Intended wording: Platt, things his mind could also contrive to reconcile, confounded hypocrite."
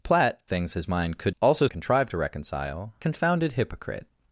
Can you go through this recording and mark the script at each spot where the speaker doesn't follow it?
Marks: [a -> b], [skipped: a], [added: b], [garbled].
Platt, things his mind could also contrive to reconcile, confounded hypocrite."